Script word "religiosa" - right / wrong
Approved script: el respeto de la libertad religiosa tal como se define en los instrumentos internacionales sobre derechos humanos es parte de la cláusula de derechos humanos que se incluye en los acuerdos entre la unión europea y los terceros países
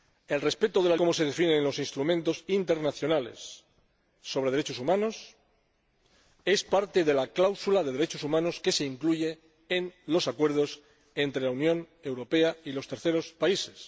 wrong